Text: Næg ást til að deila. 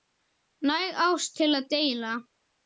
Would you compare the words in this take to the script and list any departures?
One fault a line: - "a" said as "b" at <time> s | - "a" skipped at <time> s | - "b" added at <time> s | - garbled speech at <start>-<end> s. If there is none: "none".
none